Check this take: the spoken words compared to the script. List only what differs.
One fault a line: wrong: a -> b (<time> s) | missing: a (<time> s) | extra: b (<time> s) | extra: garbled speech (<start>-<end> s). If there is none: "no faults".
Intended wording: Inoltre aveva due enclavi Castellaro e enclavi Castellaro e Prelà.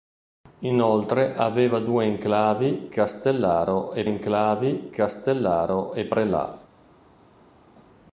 no faults